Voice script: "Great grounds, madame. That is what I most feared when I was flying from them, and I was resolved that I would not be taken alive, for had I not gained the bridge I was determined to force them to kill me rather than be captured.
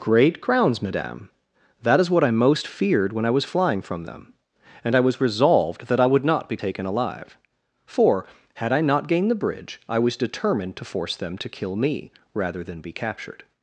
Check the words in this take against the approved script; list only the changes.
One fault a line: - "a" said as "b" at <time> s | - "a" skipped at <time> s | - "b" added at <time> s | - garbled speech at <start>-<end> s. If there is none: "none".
- "grounds" said as "crowns" at 0.4 s